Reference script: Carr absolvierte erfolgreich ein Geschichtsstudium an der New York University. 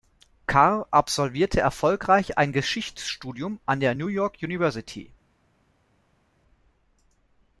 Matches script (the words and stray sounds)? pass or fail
pass